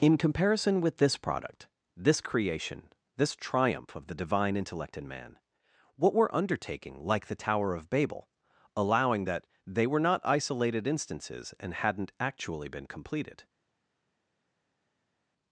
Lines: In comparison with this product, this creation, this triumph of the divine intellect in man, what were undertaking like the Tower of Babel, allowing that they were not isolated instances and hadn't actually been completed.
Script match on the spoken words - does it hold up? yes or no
yes